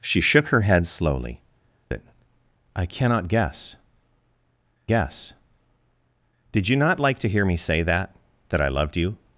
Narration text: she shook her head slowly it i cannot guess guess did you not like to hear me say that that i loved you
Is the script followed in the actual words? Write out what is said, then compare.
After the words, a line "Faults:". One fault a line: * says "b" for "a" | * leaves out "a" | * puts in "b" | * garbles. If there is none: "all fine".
she shook her head slowly it i cannot guess guess did you not like to hear me say that that i loved you
Faults:
all fine